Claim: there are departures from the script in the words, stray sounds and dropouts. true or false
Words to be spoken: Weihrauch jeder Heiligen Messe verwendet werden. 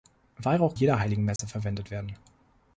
true